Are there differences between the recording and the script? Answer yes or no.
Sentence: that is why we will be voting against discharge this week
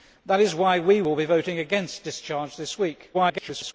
yes